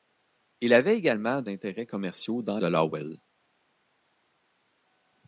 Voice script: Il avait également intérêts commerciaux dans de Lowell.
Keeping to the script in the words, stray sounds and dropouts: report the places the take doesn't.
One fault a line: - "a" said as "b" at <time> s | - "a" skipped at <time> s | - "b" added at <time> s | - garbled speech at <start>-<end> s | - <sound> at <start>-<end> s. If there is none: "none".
none